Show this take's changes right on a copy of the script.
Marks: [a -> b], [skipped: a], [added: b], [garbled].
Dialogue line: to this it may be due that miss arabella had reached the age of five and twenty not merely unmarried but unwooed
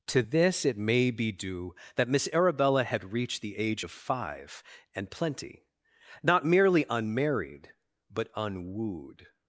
to this it may be due that miss arabella had reached the age of five and [twenty -> plenty] not merely unmarried but unwooed